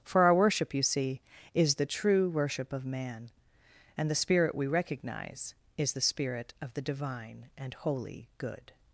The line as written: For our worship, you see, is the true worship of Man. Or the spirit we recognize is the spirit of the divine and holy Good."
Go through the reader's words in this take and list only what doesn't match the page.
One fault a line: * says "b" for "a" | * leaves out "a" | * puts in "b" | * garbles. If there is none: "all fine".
* says "And" for "Or"